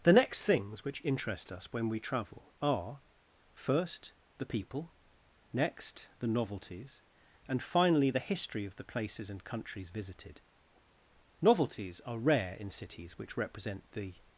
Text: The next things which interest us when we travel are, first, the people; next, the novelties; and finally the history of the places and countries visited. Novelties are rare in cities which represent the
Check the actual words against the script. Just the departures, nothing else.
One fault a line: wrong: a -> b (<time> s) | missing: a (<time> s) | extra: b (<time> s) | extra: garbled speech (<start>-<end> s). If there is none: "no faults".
no faults